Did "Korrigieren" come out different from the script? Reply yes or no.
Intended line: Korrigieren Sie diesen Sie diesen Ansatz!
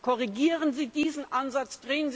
no